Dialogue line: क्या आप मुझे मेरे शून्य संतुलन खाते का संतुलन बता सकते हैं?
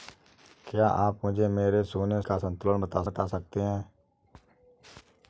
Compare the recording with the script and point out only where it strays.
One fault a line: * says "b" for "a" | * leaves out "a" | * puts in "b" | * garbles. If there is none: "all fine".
* leaves out "संतुलन खाते"
* puts in "बता"